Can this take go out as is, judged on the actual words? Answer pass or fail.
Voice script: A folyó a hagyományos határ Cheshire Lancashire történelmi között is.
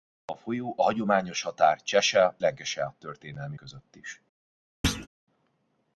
pass